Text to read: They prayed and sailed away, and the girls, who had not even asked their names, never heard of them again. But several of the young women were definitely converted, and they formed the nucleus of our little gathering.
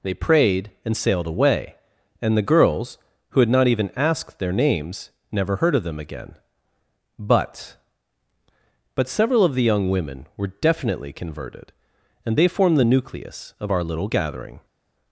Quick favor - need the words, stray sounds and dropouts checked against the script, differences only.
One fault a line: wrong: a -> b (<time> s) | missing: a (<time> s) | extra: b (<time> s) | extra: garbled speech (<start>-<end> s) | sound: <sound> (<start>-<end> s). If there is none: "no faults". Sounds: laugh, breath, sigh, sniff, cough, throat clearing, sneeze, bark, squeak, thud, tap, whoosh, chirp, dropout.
extra: But (8.9 s)